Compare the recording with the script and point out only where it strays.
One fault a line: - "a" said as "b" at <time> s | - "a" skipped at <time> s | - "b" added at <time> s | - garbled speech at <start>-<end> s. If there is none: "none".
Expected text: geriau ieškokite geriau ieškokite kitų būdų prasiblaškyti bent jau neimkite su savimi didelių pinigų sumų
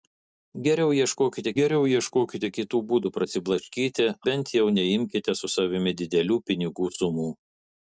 none